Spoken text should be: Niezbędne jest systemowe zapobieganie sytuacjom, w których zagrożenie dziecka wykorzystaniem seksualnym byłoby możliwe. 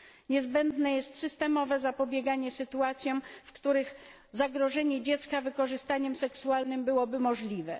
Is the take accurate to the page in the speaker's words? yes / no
yes